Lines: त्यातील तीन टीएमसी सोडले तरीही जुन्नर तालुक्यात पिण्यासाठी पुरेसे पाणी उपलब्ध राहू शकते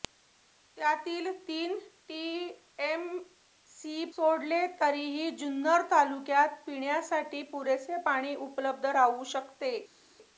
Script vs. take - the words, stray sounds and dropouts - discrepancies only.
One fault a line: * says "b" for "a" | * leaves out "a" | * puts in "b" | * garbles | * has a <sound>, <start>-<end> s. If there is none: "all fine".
all fine